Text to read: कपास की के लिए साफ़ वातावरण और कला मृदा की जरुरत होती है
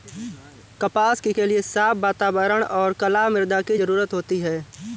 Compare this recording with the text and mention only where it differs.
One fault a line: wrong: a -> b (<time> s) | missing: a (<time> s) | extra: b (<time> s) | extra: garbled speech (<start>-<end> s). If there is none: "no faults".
no faults